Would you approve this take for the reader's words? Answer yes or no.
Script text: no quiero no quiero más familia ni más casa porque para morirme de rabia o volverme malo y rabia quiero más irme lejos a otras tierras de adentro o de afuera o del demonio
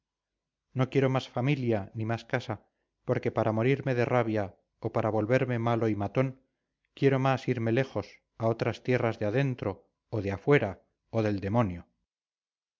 no